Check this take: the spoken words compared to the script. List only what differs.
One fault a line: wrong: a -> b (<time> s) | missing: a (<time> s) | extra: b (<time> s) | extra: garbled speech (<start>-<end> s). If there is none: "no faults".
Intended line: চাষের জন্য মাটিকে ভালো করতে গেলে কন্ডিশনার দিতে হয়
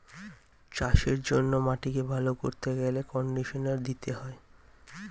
no faults